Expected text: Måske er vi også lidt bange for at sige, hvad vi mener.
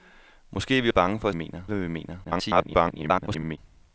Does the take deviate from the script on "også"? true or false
true